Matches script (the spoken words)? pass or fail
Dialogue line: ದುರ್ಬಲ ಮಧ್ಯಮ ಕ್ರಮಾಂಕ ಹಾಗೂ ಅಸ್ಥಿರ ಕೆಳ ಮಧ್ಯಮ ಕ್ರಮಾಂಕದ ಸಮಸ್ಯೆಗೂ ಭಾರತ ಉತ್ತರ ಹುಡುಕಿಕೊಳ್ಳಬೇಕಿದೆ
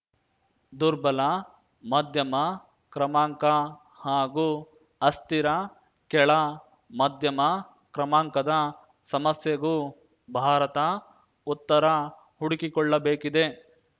pass